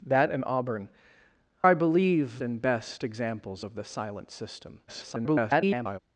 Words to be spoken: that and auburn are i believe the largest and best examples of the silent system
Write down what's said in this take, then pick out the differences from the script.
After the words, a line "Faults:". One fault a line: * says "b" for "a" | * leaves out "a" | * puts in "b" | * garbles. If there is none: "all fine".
that and auburn i believe and best examples of the silent system [garbled]
Faults:
* leaves out "are"
* leaves out "the largest"
* garbles